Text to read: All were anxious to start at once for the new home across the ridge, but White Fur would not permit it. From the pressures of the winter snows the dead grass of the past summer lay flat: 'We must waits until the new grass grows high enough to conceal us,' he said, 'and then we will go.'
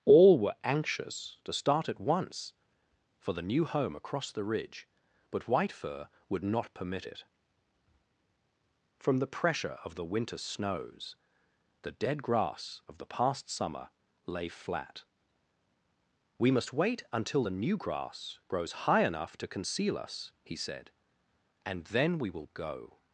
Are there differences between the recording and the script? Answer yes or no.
yes